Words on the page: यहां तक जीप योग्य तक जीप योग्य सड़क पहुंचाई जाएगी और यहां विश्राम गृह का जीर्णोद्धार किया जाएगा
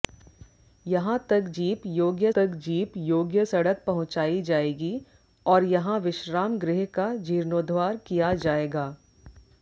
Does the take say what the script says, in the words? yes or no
yes